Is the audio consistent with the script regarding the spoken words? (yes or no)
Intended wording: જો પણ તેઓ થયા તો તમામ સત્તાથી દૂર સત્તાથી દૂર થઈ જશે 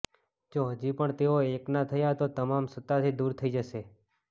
no